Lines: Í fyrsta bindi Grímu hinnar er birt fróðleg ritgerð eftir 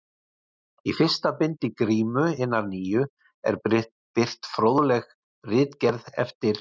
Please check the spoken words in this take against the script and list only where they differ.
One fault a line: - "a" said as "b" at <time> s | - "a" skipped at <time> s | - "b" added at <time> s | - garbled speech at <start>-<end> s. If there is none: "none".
- "nýju" added at 2.7 s